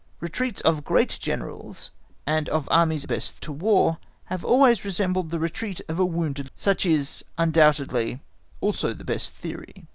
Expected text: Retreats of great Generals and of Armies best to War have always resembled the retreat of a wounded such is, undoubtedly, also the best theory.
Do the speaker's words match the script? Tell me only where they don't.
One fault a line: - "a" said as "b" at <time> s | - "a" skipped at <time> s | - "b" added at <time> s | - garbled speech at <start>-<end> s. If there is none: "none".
none